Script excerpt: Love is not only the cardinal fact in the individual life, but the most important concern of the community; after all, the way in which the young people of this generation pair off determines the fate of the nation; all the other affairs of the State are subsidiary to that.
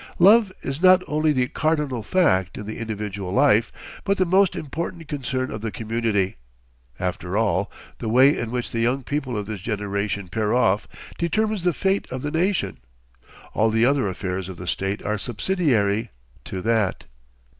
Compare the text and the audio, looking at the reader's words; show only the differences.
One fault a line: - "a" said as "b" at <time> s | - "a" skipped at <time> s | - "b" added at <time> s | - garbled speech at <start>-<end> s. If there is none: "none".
none